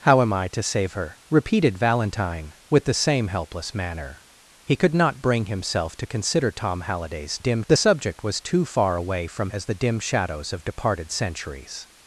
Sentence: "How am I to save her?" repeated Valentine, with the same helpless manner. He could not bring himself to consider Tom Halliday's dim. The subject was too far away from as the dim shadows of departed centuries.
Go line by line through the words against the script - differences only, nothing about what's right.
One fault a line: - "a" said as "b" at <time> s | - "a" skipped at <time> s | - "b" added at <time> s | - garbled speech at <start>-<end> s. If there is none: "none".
none